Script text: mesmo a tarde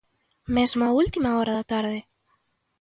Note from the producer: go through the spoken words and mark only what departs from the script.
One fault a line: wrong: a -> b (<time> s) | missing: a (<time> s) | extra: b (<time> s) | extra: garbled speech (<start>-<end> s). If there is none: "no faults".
extra: última hora da (0.9 s)